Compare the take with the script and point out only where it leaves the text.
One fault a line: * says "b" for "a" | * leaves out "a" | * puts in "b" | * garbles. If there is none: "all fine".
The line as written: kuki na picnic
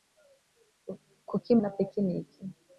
all fine